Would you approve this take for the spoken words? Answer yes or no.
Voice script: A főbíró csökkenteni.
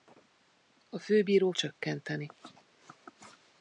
yes